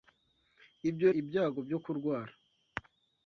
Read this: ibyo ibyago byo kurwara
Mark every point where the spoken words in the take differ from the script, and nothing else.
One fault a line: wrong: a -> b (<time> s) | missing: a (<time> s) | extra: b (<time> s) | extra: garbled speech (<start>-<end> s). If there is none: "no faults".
no faults